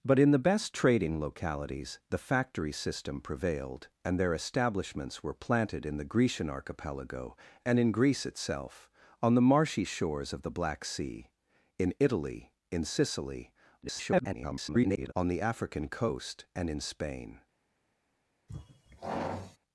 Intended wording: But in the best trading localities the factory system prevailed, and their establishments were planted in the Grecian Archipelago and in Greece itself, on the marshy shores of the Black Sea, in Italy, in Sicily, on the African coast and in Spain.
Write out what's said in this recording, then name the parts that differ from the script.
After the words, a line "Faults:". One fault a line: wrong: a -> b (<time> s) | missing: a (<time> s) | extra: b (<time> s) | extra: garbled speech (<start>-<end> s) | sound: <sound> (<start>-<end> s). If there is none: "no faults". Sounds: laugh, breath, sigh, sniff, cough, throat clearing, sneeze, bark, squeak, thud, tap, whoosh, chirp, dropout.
But in the best trading localities the factory system prevailed, and their establishments were planted in the Grecian Archipelago and in Greece itself, on the marshy shores of the Black Sea, in Italy, in Sicily, [garbled] on the African coast and in Spain.
Faults:
extra: garbled speech (13.8-15.1 s)
sound: sigh (18.5-19.6 s)